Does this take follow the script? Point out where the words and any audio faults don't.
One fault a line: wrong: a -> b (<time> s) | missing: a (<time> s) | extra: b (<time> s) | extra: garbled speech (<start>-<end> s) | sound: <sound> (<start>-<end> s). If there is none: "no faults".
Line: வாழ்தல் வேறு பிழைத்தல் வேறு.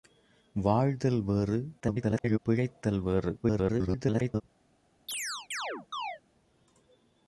extra: garbled speech (1.8-2.4 s)
extra: garbled speech (3.4-4.4 s)
sound: chirp (5.1-6.2 s)